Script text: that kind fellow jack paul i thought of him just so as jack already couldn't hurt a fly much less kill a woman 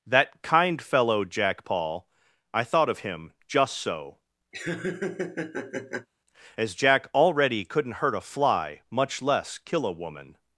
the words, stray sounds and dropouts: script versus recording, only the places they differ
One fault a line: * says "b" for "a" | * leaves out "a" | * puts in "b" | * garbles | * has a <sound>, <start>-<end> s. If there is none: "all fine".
* has a laugh, 4.5-6.1 s